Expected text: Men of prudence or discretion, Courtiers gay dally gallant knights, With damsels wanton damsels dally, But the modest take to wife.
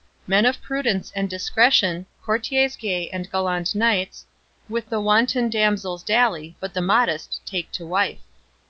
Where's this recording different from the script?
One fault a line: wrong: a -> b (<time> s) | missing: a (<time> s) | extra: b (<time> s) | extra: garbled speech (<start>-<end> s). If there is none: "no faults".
wrong: or -> and (1.1 s)
wrong: dally -> and (3.1 s)
wrong: damsels -> the (4.9 s)